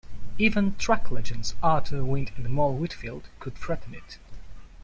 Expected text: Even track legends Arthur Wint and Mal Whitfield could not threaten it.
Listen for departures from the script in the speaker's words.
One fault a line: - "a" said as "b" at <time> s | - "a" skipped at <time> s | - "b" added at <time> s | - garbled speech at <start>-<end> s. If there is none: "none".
- "not" skipped at 3.6 s